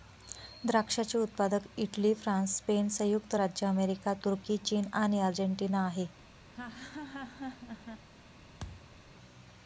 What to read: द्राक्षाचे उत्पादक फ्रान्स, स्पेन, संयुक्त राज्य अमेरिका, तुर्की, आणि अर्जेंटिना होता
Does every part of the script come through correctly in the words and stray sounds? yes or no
no